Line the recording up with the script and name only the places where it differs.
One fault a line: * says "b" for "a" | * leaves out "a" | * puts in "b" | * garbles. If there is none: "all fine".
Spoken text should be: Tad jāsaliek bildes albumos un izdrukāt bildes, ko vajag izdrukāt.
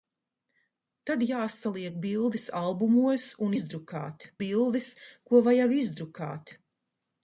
all fine